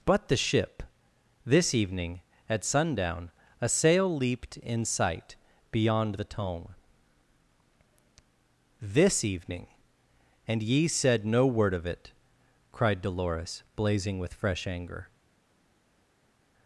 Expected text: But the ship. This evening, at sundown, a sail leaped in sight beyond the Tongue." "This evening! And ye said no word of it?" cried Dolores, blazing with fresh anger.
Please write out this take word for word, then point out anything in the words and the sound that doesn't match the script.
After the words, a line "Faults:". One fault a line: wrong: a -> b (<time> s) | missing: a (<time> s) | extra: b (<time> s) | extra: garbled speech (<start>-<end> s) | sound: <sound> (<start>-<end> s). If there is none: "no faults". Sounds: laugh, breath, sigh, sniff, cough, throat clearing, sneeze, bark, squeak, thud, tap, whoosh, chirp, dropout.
But the ship. This evening, at sundown, a sail leaped in sight beyond the Tongue." "This evening! And ye said no word of it?" cried Dolores, blazing with fresh anger.
Faults:
no faults